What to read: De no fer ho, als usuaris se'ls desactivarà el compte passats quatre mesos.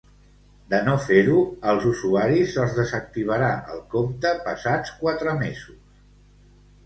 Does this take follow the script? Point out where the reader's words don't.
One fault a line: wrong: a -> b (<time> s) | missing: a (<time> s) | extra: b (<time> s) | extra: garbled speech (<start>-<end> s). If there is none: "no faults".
no faults